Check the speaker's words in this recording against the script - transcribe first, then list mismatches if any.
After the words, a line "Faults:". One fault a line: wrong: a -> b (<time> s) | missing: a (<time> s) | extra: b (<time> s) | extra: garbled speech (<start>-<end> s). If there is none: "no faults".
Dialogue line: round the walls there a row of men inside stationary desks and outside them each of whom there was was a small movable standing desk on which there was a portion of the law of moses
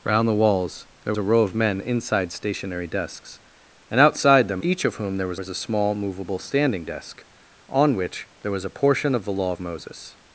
round the walls there a row of men inside stationary desks and outside them each of whom there was was a small movable standing desk on which there was a portion of the law of moses
Faults:
no faults